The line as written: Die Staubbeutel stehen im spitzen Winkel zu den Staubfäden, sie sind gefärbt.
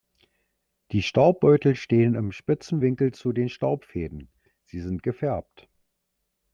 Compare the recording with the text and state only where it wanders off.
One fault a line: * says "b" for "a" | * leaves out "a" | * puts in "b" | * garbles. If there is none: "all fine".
all fine